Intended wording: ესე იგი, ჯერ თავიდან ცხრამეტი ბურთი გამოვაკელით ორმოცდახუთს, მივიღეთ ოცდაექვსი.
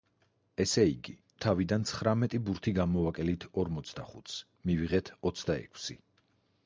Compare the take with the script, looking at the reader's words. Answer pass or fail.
fail